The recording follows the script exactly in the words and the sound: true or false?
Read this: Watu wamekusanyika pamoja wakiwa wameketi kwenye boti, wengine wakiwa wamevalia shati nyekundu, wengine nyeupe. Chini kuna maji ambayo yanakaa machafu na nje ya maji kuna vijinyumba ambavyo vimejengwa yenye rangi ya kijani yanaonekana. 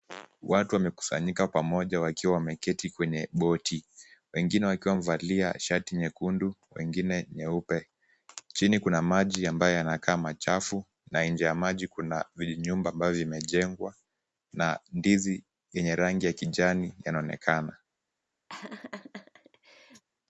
false